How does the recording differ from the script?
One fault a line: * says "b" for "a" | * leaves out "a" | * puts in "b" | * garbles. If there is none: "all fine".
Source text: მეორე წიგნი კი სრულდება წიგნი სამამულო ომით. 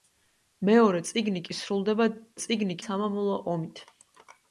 all fine